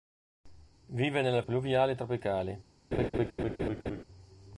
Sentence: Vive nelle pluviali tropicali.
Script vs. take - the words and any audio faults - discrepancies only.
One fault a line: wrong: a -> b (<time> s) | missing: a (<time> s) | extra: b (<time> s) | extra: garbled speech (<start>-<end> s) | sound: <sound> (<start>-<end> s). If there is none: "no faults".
sound: laugh (2.9-4.0 s)